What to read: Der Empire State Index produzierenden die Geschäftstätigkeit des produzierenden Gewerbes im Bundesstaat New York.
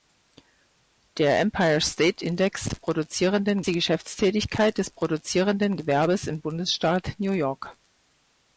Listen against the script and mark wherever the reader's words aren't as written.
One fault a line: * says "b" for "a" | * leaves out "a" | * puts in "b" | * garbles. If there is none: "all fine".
all fine